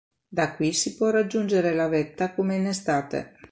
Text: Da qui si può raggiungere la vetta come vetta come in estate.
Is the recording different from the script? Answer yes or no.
yes